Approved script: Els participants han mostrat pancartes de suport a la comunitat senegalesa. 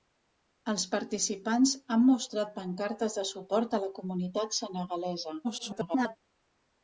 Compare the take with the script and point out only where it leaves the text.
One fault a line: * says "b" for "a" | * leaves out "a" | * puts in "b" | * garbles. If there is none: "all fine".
* garbles